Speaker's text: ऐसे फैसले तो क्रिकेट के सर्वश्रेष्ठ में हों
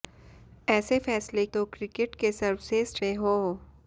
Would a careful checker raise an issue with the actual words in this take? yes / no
no